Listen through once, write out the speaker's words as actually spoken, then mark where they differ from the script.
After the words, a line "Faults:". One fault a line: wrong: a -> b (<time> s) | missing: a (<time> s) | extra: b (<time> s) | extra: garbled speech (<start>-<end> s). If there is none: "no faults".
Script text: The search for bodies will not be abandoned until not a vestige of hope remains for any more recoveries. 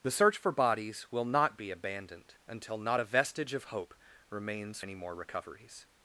The search for bodies will not be abandoned until not a vestige of hope remains any more recoveries.
Faults:
missing: for (4.8 s)